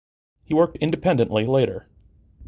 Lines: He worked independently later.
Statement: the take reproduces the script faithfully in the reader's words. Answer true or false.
true